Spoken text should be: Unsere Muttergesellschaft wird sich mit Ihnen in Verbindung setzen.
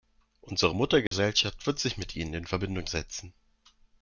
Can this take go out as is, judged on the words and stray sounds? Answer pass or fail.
fail